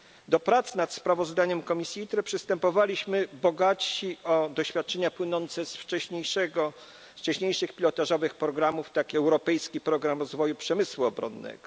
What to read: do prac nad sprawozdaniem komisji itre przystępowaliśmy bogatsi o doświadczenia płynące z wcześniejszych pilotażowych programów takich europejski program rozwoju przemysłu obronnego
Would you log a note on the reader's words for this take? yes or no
no